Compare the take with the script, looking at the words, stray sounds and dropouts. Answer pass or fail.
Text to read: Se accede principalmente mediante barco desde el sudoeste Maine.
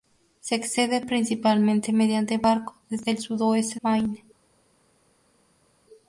pass